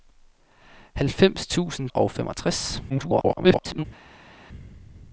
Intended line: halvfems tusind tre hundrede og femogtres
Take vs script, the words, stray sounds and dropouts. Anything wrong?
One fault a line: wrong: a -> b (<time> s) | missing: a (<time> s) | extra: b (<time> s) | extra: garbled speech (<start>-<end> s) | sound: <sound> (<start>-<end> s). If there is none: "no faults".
missing: tre hundrede (1.9 s)
extra: garbled speech (2.9-3.8 s)